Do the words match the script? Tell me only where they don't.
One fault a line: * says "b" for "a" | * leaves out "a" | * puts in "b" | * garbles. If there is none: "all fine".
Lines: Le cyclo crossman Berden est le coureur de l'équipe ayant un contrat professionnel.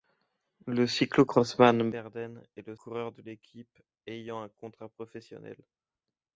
all fine